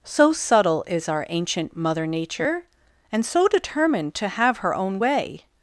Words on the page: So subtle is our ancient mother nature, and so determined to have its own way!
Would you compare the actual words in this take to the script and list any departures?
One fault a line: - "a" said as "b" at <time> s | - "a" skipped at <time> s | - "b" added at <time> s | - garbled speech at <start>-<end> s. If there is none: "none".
- "its" said as "her" at 4.6 s